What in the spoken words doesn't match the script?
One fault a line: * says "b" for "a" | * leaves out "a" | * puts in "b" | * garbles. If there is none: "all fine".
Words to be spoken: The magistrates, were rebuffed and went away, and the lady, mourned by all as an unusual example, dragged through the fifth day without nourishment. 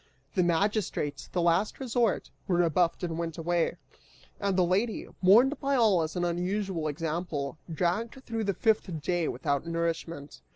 * puts in "the last resort"